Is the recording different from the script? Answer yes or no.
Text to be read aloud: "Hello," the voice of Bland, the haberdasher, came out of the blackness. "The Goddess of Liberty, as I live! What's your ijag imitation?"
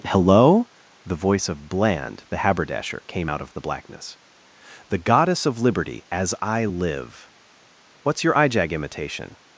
no